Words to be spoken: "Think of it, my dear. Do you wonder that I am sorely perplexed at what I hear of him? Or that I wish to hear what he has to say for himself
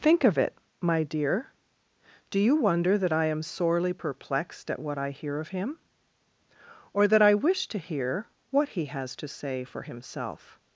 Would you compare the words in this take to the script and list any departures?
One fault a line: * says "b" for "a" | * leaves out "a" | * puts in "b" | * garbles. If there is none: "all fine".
all fine